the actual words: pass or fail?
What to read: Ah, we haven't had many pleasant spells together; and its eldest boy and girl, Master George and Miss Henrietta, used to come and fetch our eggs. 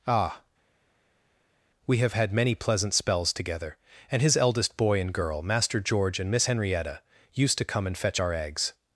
fail